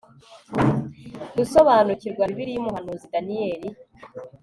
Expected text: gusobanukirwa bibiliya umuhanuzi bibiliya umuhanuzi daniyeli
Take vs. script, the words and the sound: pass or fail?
fail